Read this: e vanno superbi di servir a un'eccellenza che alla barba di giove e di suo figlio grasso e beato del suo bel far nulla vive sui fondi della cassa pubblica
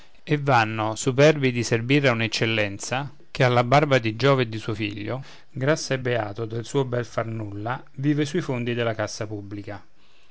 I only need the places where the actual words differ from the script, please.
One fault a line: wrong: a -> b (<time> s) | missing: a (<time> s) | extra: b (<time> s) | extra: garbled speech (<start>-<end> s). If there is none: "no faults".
no faults